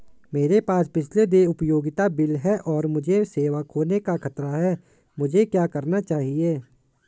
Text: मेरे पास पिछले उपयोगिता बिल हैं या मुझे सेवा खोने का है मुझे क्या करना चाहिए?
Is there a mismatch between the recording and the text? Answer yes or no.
yes